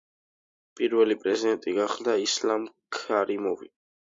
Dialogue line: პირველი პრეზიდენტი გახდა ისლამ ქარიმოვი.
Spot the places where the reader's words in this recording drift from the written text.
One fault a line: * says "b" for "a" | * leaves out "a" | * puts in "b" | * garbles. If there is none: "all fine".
all fine